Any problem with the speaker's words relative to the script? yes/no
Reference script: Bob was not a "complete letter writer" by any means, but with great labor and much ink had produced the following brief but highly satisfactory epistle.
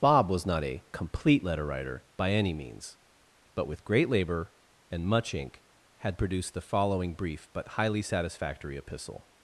no